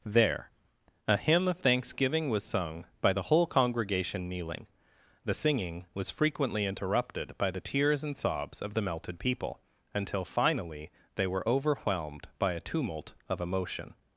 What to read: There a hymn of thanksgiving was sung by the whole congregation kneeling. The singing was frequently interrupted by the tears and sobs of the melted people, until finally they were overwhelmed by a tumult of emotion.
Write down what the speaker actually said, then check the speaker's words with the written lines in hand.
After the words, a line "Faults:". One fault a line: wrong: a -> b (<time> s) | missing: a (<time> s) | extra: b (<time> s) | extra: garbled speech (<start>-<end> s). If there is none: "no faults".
There a hymn of thanksgiving was sung by the whole congregation kneeling. The singing was frequently interrupted by the tears and sobs of the melted people, until finally they were overwhelmed by a tumult of emotion.
Faults:
no faults